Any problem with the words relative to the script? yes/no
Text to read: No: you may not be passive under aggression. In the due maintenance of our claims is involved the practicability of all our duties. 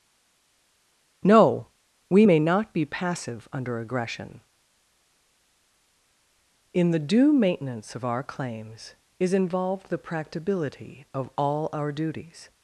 yes